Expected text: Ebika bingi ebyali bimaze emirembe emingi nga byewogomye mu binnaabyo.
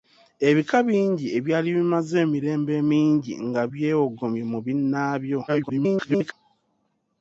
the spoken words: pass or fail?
fail